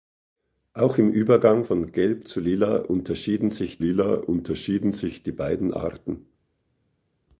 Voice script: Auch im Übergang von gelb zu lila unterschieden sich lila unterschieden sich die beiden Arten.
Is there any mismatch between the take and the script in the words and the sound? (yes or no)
no